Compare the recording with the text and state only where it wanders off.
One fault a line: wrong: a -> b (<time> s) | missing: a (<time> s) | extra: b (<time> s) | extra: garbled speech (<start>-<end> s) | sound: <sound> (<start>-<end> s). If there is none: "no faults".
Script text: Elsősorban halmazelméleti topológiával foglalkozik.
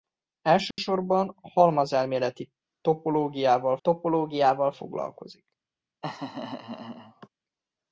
sound: dropout (0.7-0.8 s)
extra: topológiával (3.8 s)
sound: laugh (6.0-7.3 s)